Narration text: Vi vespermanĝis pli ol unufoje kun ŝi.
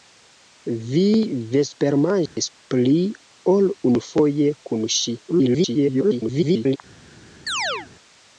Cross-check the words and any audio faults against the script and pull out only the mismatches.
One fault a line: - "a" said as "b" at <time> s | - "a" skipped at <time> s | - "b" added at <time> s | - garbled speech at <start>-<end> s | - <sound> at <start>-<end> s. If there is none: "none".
- dropout at 2.3-2.4 s
- garbled speech at 5.3-6.8 s
- chirp at 7.5-7.9 s